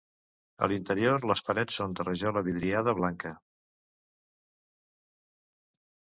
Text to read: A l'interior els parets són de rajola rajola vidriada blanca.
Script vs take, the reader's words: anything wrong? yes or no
yes